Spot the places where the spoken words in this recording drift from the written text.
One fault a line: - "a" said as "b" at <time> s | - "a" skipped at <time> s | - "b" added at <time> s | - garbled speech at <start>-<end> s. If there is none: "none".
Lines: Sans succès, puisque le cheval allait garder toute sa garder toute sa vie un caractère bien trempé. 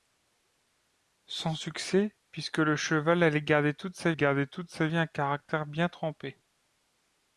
none